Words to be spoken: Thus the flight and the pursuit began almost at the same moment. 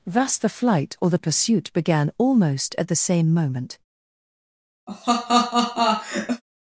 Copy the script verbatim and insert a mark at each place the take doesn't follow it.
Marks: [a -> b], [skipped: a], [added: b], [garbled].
Thus the flight [and -> or] the pursuit began almost at the same moment.